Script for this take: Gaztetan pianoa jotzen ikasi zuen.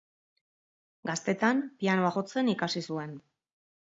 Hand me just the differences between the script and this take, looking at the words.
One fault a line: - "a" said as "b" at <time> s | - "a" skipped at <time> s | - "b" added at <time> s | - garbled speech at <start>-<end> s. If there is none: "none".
none